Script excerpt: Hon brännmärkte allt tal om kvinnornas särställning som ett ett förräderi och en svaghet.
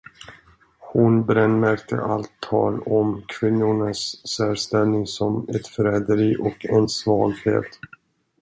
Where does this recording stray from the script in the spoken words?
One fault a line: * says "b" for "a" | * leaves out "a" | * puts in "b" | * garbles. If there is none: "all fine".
* leaves out "ett"